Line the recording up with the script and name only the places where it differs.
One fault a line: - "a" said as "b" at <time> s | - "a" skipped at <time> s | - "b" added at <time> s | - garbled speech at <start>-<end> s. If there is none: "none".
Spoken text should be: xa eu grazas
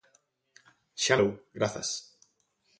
none